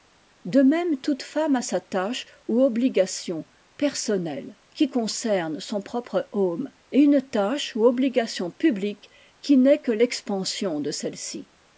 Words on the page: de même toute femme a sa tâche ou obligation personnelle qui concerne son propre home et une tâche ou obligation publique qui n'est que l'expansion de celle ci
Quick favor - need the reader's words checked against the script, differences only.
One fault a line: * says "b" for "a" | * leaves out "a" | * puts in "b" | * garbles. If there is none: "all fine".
all fine